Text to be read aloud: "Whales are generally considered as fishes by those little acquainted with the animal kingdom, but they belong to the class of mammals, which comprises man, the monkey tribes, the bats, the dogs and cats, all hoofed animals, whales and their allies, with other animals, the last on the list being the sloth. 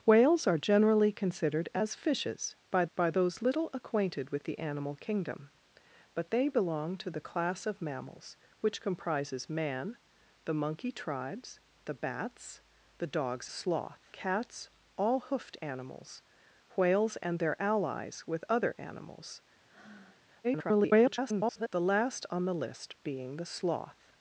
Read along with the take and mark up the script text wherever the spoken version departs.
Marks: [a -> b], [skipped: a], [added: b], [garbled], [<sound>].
"Whales are generally considered as fishes by [added: by] those little acquainted with the animal kingdom, but they belong to the class of mammals, which comprises man, the monkey tribes, the bats, the dogs [and -> sloth] cats, all hoofed animals, whales and their allies, with other animals, [breath] [garbled] the last on the list being the sloth.